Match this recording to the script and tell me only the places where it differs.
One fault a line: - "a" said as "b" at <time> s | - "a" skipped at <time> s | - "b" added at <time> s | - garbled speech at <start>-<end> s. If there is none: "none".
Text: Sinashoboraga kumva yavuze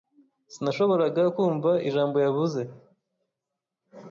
- "ijambo" added at 1.9 s